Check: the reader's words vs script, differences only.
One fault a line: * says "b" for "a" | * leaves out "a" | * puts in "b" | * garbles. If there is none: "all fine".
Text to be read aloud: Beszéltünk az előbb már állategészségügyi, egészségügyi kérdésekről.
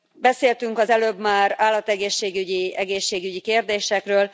all fine